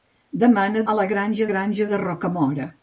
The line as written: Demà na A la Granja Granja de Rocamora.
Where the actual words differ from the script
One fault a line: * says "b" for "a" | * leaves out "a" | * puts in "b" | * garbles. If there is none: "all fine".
all fine